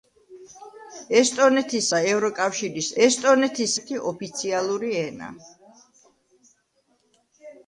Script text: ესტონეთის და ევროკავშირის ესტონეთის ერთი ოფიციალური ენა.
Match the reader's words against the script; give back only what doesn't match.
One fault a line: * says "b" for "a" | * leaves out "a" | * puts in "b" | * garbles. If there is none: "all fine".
all fine